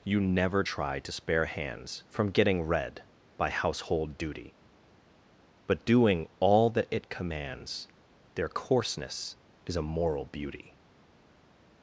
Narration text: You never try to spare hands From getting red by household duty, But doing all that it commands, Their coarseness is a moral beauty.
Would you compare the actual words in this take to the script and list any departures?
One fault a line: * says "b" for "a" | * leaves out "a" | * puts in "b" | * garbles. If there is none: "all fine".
all fine